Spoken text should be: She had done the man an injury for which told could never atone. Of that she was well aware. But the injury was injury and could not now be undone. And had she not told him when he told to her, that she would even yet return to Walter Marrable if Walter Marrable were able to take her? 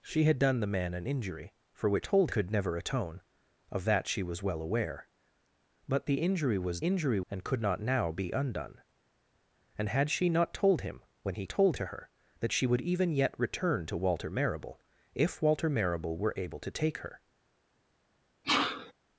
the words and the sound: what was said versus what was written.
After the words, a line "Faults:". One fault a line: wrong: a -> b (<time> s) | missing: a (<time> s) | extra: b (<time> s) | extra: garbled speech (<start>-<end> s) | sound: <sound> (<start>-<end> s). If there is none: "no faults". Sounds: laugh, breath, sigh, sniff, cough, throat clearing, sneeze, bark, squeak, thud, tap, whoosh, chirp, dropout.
She had done the man an injury for which told could never atone. Of that she was well aware. But the injury was injury and could not now be undone. And had she not told him when he told to her, that she would even yet return to Walter Marrable if Walter Marrable were able to take her?
Faults:
sound: sneeze (18.4-18.9 s)